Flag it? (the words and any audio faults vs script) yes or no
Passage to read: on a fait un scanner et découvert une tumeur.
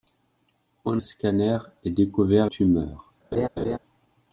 yes